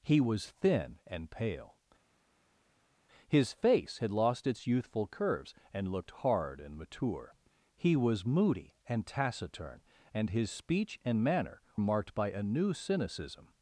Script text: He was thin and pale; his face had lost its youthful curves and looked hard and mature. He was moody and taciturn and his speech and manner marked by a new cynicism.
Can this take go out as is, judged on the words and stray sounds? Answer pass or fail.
pass